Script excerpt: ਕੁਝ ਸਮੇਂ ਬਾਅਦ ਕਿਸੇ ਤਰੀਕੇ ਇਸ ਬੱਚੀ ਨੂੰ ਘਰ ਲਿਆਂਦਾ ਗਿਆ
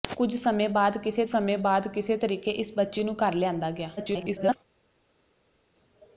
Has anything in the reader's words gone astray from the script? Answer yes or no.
yes